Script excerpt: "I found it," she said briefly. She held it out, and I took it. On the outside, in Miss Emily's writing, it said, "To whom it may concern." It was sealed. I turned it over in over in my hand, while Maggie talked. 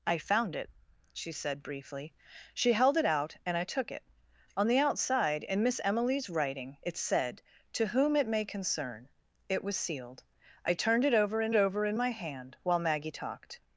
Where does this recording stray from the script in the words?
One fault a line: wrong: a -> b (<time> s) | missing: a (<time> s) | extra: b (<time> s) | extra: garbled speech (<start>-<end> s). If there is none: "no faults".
no faults